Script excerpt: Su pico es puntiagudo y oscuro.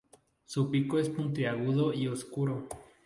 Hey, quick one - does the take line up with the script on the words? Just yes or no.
yes